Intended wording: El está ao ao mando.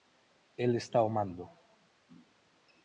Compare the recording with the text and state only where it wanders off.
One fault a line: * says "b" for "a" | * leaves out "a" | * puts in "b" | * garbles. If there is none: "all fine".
* leaves out "ao"